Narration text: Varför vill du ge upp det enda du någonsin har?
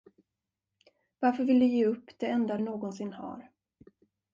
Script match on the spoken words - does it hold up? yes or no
no